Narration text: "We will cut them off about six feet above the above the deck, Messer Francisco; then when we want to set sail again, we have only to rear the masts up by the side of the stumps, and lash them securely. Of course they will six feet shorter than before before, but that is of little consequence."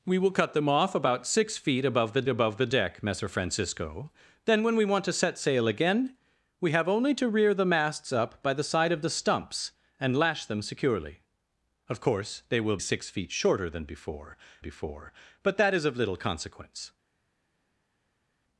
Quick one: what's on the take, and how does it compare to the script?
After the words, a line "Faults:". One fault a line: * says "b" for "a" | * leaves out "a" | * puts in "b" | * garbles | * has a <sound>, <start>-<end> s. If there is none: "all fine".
"We will cut them off about six feet above the above the deck, Messer Francisco; then when we want to set sail again, we have only to rear the masts up by the side of the stumps, and lash them securely. Of course they will six feet shorter than before before, but that is of little consequence."
Faults:
all fine